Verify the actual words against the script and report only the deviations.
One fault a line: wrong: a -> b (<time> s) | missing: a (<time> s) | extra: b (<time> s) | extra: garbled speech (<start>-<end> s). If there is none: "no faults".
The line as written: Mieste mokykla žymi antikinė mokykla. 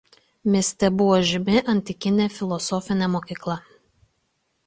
wrong: mokykla -> buvo (1.0 s)
extra: filosofinė (2.4 s)